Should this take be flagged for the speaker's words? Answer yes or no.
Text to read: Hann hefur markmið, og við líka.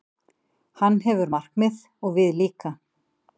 no